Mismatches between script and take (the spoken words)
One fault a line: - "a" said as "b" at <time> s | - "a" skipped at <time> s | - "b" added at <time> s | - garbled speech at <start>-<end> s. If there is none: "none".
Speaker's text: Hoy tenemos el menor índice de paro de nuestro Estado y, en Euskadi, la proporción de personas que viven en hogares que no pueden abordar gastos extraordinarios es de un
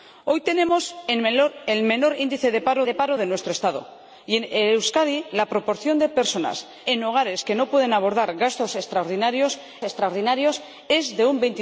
- "paro de" added at 2.9 s
- "que viven" skipped at 6.7 s
- "extraordinarios" added at 9.8 s